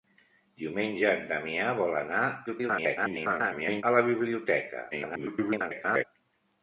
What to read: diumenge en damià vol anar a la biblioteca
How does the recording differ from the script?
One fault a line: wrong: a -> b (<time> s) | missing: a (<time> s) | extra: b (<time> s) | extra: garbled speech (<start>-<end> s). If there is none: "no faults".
extra: garbled speech (2.5-3.8 s)
extra: garbled speech (4.9-6.0 s)